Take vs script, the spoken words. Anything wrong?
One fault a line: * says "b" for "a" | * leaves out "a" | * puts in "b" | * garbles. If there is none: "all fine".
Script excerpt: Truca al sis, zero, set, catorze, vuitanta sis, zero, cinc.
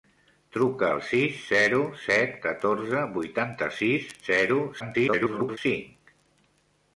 * garbles